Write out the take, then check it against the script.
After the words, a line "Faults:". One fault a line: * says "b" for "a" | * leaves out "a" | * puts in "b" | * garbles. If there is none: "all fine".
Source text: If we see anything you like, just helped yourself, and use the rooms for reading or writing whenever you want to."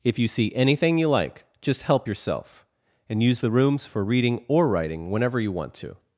If you see anything you like, just help yourself, and use the rooms for reading or writing whenever you want to."
Faults:
* says "you" for "we"
* says "help" for "helped"